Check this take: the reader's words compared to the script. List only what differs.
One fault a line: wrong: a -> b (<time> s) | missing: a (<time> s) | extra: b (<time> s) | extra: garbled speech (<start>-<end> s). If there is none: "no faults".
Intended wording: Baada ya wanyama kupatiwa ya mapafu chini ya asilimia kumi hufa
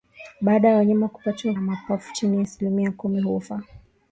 no faults